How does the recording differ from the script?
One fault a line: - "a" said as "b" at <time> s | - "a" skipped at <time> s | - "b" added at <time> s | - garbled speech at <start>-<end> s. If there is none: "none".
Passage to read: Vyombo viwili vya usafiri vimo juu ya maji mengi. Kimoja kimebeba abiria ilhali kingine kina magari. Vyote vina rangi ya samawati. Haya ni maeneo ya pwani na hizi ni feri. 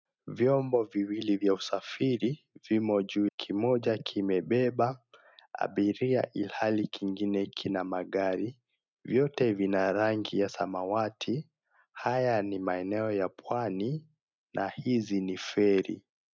- "ya maji mengi" skipped at 3.3 s